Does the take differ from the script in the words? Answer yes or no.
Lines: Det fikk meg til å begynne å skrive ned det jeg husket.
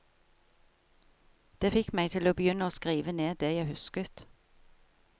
no